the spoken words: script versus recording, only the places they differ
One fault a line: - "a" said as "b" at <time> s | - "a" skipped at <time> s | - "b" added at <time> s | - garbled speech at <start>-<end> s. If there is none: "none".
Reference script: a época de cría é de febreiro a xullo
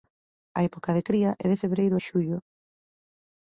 none